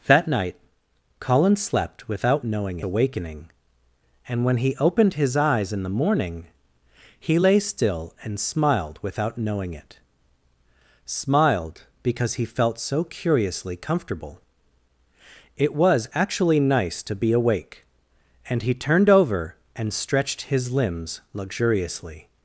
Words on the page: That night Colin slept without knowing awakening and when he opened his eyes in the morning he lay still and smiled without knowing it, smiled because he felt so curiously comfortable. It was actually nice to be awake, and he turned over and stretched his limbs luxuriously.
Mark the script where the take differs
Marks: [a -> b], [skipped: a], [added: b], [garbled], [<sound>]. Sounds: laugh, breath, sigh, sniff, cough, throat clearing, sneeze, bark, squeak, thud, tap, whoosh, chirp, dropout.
That night Colin slept without knowing awakening and when he opened his eyes in the morning he lay still and smiled without knowing it, smiled because he felt so curiously comfortable. It was actually nice to be awake, and he turned over and stretched his limbs luxuriously.